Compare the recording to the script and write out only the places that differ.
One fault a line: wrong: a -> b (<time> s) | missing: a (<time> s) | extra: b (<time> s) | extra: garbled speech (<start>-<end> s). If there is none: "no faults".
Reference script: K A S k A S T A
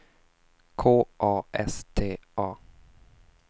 missing: k A S (1.9 s)